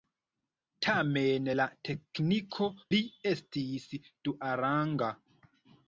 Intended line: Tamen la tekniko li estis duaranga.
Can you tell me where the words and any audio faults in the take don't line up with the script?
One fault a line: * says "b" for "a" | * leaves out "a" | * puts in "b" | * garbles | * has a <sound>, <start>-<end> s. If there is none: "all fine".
all fine